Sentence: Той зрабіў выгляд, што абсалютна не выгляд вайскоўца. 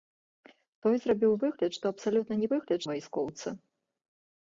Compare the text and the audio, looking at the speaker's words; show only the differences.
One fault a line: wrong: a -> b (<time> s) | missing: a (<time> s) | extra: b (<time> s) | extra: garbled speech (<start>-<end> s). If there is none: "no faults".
no faults